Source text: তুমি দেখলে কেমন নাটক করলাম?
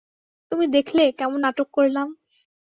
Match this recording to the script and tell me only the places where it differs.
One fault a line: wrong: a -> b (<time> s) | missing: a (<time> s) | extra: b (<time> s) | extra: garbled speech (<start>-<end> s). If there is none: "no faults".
no faults